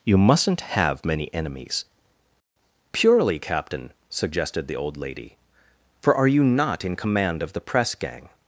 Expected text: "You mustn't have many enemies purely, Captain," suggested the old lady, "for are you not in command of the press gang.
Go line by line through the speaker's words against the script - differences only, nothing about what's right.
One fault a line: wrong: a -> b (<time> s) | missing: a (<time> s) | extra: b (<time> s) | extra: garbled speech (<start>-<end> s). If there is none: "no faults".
no faults